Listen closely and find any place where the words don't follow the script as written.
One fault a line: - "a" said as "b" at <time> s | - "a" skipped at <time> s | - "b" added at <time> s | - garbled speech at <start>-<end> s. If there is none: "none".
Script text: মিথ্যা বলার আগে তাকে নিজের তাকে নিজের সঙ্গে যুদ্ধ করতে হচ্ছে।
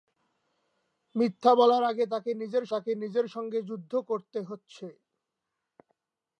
none